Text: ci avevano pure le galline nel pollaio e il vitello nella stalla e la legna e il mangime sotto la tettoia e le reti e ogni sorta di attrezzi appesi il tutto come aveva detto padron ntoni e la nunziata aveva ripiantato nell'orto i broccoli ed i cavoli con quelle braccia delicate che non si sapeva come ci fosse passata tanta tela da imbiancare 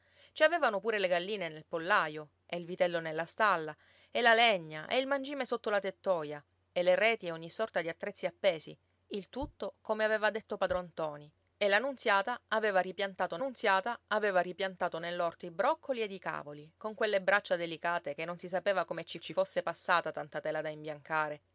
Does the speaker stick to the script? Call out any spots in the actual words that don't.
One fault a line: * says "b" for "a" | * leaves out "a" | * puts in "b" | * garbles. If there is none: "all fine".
* puts in "nunziata aveva ripiantato"
* puts in "ci"